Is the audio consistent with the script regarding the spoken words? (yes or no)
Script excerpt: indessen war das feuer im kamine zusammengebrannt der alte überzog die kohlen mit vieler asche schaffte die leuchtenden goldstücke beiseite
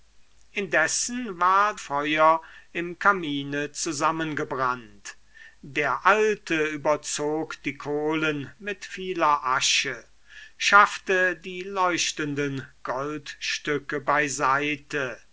no